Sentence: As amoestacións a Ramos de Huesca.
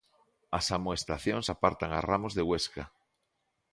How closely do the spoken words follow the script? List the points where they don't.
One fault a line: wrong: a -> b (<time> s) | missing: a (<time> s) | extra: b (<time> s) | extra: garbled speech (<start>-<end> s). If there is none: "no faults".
extra: apartan (1.5 s)